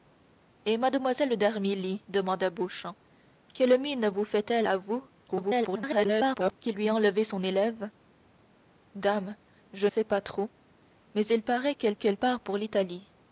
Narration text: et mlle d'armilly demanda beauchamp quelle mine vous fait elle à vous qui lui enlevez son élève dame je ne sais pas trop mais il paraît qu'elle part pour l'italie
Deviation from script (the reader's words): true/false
true